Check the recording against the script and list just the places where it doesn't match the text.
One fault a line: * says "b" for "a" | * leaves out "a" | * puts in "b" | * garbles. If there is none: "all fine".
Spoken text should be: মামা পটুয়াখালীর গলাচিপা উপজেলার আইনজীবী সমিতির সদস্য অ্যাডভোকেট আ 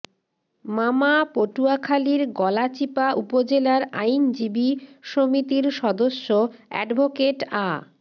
all fine